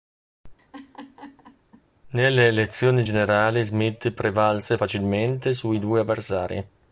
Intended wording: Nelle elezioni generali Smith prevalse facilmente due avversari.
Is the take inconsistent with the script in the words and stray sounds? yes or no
yes